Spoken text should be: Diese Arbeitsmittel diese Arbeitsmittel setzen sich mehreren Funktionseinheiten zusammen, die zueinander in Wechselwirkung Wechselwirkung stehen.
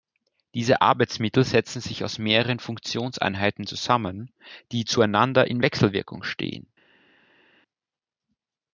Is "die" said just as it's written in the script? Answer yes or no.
yes